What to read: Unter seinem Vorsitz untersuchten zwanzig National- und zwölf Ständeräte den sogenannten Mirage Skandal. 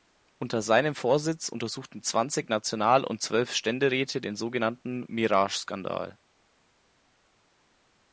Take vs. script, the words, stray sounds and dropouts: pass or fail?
pass